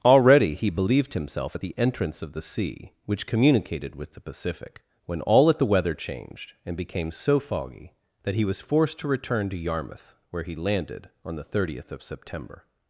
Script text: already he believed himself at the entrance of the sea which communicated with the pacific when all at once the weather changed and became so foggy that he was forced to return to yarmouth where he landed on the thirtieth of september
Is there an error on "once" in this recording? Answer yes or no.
yes